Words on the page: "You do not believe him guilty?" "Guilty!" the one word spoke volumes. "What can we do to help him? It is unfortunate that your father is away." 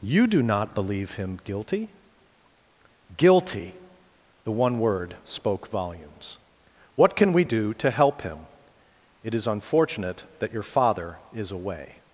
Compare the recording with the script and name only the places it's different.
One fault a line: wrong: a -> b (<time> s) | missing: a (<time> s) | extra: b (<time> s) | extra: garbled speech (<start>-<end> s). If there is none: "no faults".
no faults